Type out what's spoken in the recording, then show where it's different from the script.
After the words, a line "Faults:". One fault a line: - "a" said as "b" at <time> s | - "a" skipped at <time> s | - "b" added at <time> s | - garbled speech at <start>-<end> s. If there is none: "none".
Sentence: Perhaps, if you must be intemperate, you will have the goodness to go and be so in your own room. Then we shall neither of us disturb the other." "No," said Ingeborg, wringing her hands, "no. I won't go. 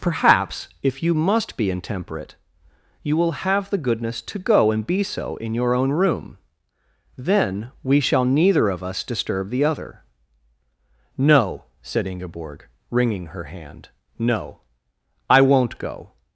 Perhaps, if you must be intemperate, you will have the goodness to go and be so in your own room. Then we shall neither of us disturb the other." "No," said Ingeborg, wringing her hand, "no. I won't go.
Faults:
- "hands" said as "hand" at 13.4 s